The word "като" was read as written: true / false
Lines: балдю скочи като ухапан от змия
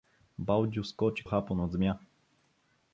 false